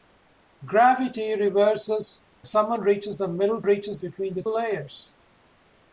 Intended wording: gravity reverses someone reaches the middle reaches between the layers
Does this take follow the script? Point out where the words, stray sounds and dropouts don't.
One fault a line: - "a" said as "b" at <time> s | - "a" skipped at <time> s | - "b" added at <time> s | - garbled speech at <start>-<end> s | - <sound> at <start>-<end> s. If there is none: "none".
none